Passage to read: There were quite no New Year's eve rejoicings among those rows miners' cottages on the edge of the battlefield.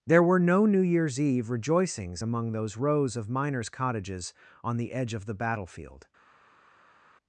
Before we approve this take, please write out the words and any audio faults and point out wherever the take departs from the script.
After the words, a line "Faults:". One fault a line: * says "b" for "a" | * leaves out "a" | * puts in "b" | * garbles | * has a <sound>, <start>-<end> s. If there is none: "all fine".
There were no New Year's eve rejoicings among those rows of miners' cottages on the edge of the battlefield.
Faults:
* leaves out "quite"
* puts in "of"